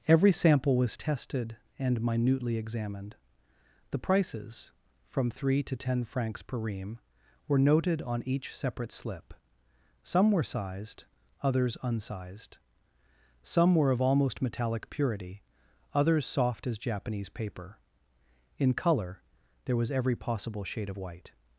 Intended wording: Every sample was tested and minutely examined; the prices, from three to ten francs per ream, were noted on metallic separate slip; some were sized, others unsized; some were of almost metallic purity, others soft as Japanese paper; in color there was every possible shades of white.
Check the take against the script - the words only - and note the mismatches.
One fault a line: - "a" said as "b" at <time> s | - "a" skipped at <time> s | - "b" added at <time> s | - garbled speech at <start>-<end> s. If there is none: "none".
- "metallic" said as "each" at 8.2 s
- "shades" said as "shade" at 20.6 s